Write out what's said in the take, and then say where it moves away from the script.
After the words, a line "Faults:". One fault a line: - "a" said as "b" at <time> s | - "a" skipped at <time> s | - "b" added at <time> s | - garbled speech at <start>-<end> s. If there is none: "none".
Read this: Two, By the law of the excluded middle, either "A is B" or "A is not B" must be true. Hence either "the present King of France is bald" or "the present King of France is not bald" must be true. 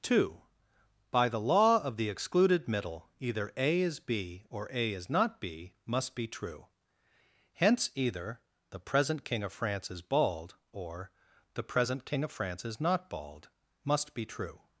Two, By the law of the excluded middle, either "A is B" or "A is not B" must be true. Hence either "the present King of France is bald" or "the present King of France is not bald" must be true.
Faults:
none